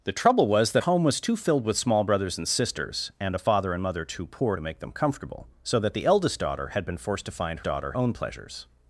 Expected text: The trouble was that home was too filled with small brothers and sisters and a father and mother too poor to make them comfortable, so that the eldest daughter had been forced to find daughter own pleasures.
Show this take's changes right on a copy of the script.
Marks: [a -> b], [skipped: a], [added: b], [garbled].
The trouble was that home was too filled with small brothers and sisters and a father and mother too poor to make them comfortable, so that the eldest daughter had been forced to find daughter own pleasures.